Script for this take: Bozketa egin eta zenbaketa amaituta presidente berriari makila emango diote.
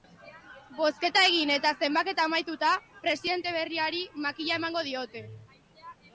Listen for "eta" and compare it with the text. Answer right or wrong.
right